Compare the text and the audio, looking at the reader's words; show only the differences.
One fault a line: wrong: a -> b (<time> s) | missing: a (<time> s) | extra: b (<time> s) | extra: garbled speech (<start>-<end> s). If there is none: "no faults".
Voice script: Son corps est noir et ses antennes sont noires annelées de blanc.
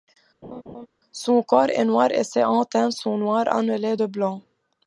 no faults